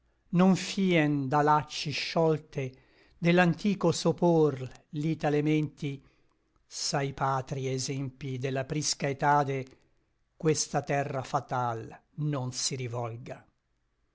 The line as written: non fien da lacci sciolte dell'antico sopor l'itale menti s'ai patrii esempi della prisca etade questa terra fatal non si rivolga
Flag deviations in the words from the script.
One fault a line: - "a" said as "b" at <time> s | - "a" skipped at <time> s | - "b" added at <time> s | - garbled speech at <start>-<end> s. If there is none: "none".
none